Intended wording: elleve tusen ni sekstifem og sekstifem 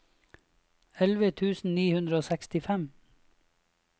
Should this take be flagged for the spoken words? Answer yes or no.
yes